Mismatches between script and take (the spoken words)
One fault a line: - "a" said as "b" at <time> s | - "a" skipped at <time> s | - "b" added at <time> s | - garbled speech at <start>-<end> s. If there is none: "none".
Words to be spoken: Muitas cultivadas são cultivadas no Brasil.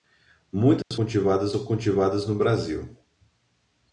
none